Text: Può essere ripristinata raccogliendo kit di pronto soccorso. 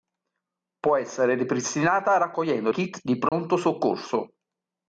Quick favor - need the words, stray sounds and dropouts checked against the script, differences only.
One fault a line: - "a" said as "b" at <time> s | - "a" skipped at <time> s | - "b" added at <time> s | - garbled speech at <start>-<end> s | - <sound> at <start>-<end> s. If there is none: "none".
- dropout at 3.3-3.3 s